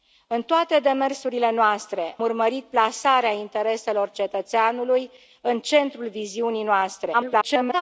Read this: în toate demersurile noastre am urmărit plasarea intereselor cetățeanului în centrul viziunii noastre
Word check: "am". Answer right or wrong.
wrong